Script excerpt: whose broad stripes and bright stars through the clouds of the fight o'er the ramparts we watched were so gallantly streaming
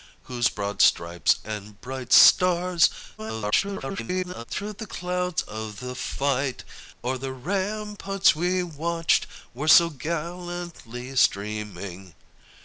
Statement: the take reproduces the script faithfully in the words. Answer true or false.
false